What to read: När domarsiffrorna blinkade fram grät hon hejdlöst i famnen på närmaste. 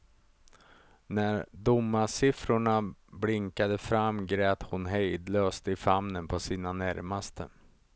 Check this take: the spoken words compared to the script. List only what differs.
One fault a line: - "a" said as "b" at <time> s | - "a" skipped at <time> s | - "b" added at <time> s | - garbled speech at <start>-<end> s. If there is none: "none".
- "sina" added at 6.4 s